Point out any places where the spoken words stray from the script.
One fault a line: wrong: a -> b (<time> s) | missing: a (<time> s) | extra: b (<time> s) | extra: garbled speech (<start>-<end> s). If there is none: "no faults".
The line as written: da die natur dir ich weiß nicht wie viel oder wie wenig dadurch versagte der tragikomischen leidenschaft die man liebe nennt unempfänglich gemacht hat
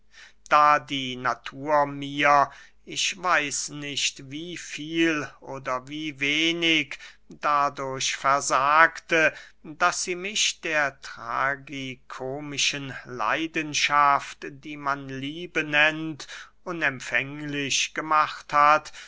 wrong: dir -> mir (1.9 s)
extra: daß sie mich (9.6 s)